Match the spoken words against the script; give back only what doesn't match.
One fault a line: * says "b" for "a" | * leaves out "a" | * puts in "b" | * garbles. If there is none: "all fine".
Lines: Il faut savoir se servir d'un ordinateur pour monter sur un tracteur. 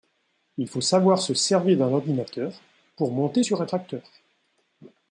all fine